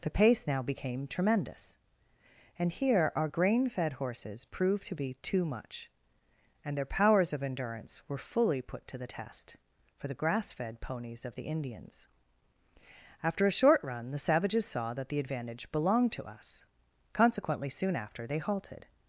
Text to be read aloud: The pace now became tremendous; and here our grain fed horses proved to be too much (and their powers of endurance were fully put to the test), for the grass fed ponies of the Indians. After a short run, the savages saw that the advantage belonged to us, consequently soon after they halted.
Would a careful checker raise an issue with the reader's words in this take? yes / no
no